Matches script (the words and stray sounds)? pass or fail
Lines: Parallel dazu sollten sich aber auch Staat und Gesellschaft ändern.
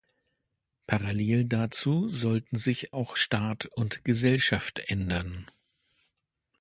fail